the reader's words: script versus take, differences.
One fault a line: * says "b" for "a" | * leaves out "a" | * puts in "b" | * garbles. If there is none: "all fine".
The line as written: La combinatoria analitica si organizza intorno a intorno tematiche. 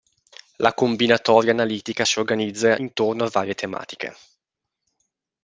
* says "varie" for "intorno"